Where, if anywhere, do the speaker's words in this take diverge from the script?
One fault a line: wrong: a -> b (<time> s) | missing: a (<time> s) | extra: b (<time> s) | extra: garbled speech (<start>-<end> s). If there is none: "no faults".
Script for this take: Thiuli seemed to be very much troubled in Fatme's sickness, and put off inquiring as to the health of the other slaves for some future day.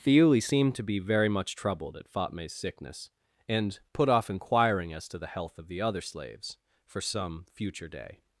wrong: in -> at (1.9 s)